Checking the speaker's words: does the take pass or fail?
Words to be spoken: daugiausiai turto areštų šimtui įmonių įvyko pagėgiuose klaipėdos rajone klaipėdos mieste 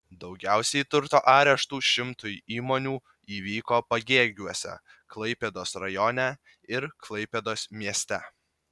fail